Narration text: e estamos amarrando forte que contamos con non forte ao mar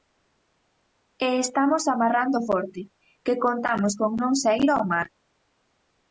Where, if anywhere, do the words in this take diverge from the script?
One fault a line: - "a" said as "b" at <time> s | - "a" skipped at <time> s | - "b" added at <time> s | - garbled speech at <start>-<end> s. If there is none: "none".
- "forte" said as "saír" at 4.4 s